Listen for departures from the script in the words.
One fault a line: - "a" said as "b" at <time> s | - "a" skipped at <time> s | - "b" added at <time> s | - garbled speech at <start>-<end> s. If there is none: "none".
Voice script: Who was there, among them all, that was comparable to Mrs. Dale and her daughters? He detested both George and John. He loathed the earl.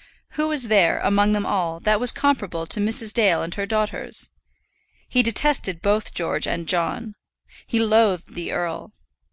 none